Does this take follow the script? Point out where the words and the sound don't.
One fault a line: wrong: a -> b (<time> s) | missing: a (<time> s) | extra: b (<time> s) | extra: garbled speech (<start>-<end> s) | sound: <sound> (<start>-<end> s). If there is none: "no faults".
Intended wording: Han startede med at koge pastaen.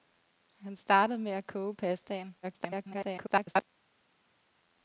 extra: garbled speech (2.4-3.7 s)